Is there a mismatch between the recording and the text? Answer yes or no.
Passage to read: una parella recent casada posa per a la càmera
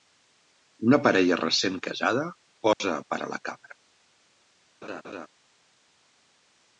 no